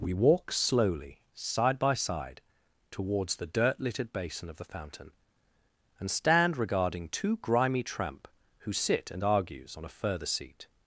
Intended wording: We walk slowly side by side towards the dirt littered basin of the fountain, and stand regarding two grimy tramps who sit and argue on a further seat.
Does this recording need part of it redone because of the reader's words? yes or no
yes